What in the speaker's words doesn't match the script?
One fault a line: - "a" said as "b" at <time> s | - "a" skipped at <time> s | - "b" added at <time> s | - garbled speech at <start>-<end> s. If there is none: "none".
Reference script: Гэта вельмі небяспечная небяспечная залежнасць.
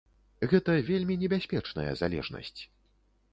- "небяспечная" skipped at 1.9 s